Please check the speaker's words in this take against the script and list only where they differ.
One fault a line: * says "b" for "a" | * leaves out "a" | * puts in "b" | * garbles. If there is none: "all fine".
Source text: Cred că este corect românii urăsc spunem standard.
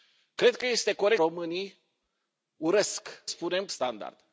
all fine